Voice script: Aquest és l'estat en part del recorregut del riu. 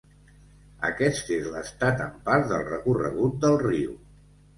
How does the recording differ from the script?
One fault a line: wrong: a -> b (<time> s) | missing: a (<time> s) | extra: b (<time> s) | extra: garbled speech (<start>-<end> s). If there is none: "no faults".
no faults